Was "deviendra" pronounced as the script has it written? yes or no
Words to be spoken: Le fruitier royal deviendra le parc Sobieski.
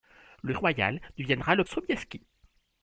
yes